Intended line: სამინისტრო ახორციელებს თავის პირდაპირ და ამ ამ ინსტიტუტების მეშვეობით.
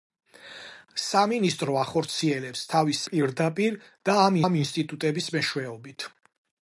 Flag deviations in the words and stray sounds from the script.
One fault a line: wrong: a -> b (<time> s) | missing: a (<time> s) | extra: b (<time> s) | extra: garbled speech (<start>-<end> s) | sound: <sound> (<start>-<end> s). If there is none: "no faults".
no faults